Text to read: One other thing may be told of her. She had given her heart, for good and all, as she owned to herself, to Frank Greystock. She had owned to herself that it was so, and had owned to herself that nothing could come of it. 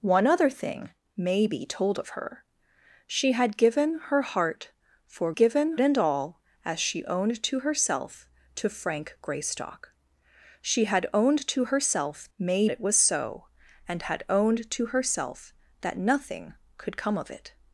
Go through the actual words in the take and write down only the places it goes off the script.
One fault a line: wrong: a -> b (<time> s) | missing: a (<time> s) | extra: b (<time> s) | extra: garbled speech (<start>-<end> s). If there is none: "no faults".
wrong: good -> given (5.3 s)
wrong: that -> may (12.4 s)